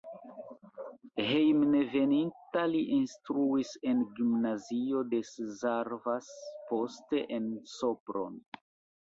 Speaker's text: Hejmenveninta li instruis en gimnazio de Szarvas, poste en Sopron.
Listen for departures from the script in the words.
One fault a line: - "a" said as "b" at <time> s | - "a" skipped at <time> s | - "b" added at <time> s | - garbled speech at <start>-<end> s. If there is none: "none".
none